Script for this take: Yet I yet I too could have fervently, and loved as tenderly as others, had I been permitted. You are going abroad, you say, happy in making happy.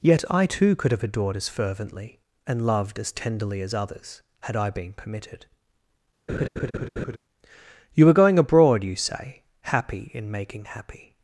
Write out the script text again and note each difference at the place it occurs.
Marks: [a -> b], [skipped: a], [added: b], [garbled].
Yet I [skipped: yet I] too could have [added: adored as] fervently, and loved as tenderly as others, had I been permitted. You are going abroad, you say, happy in making happy.